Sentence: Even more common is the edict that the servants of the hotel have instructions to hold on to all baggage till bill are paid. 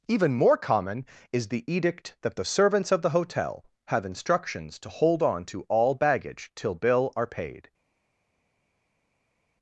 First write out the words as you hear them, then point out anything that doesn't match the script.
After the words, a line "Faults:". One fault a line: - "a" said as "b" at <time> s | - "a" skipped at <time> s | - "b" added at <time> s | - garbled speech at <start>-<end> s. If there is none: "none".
Even more common is the edict that the servants of the hotel have instructions to hold on to all baggage till bill are paid.
Faults:
none